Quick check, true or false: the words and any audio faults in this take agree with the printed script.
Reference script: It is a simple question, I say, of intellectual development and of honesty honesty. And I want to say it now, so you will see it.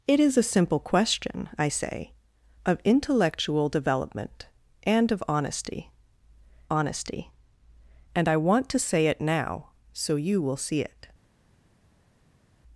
true